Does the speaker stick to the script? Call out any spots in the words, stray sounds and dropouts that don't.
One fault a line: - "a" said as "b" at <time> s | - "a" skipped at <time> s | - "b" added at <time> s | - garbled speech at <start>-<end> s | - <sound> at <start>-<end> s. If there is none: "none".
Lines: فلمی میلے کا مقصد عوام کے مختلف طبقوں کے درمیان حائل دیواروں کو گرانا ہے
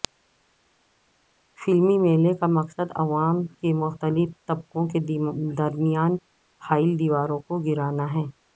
none